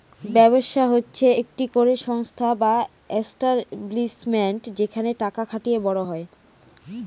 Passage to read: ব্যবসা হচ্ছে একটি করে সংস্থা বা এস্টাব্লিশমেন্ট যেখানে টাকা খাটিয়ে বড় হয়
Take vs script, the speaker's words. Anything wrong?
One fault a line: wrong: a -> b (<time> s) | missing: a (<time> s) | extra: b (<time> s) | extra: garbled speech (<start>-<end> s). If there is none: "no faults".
no faults